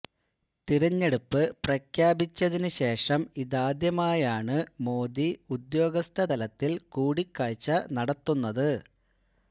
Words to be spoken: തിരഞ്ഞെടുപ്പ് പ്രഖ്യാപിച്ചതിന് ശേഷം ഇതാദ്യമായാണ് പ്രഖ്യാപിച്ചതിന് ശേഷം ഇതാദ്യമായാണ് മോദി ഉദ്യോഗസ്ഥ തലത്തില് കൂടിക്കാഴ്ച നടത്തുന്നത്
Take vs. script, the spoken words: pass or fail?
fail